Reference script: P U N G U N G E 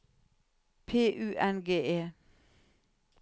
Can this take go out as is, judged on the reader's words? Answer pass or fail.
fail